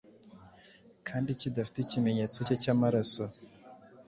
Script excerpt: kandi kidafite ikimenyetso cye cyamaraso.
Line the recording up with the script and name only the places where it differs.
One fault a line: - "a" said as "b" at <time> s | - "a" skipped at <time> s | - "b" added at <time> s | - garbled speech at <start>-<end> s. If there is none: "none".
none